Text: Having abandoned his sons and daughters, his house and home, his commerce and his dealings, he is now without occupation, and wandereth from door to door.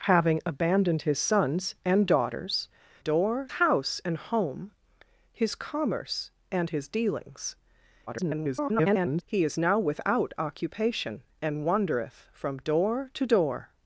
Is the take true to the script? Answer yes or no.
no